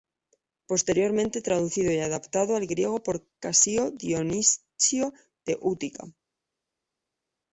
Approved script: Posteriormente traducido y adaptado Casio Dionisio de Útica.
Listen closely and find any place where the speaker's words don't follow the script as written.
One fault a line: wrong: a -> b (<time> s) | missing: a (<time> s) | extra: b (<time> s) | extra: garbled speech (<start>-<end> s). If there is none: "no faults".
extra: al griego por (2.5 s)